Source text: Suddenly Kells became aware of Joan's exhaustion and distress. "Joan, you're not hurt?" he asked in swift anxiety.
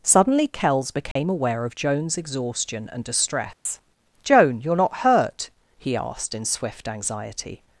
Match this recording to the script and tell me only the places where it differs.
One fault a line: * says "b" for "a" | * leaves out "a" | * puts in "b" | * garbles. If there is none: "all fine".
all fine